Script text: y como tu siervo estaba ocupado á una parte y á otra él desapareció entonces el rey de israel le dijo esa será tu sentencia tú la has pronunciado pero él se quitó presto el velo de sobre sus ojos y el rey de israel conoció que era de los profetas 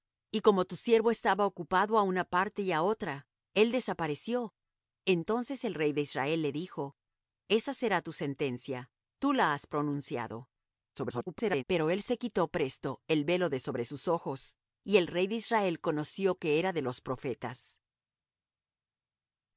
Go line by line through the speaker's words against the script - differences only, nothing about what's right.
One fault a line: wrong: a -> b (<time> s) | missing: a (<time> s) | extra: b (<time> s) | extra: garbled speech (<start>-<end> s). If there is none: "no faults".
extra: garbled speech (10.9-11.6 s)